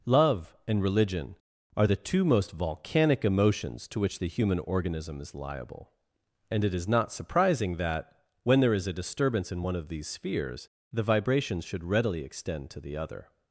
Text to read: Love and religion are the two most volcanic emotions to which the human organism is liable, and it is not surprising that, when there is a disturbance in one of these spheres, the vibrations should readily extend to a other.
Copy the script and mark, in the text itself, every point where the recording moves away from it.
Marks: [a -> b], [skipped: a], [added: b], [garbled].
Love and religion are the two most volcanic emotions to which the human organism is liable, and it is not surprising that, when there is a disturbance in one of these spheres, the vibrations should readily extend to [a -> the] other.